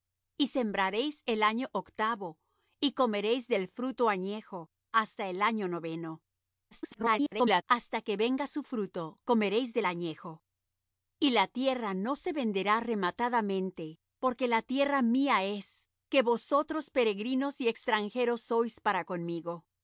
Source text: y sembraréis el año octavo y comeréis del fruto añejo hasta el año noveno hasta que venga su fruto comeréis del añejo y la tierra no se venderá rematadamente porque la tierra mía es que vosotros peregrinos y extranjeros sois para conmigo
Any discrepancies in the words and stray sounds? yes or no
yes